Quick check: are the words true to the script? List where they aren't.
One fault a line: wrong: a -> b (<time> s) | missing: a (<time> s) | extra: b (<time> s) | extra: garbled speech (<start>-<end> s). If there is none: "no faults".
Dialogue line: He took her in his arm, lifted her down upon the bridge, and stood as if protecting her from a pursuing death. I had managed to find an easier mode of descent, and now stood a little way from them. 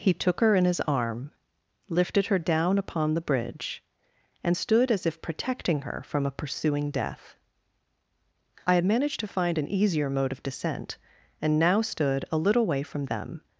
no faults